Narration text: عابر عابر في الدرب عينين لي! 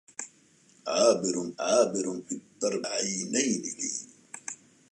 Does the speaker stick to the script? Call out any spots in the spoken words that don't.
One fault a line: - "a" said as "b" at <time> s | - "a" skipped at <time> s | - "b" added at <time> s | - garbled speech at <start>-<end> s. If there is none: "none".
none